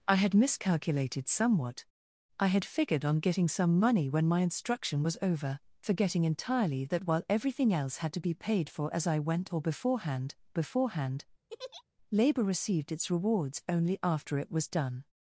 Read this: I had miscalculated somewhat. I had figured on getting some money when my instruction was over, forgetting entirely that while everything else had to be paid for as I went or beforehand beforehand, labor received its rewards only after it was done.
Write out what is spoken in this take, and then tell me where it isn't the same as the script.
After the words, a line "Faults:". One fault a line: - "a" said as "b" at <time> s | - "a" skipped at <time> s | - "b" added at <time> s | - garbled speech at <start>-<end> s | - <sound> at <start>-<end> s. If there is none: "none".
I had miscalculated somewhat. I had figured on getting some money when my instruction was over, forgetting entirely that while everything else had to be paid for as I went or beforehand beforehand, labor received its rewards only after it was done.
Faults:
- laugh at 11.5-11.8 s